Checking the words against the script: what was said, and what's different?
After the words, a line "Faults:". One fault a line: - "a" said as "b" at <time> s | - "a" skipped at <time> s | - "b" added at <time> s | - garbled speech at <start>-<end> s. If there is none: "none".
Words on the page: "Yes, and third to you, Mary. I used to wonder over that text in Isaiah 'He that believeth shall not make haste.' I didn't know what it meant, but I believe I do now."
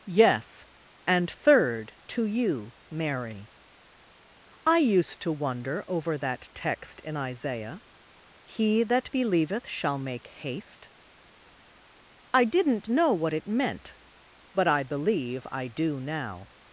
"Yes, and third to you, Mary. I used to wonder over that text in Isaiah 'He that believeth shall make haste.' I didn't know what it meant, but I believe I do now."
Faults:
- "not" skipped at 10.0 s